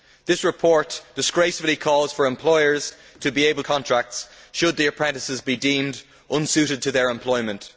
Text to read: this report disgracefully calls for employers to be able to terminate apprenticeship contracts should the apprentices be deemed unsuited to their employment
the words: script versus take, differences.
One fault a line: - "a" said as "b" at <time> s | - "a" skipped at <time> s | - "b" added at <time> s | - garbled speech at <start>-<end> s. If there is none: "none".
- "to terminate apprenticeship" skipped at 3.6 s